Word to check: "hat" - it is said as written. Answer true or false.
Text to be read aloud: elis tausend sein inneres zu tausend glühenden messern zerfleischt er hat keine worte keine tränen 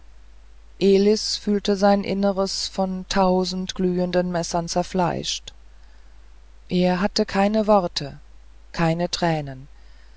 false